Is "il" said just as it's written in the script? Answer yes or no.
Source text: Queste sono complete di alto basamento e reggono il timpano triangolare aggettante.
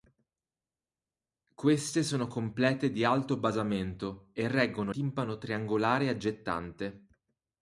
no